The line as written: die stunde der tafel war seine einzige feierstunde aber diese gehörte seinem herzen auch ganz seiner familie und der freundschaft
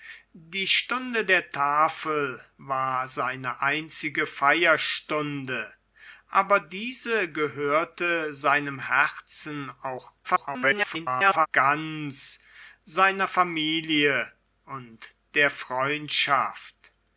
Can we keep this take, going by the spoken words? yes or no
no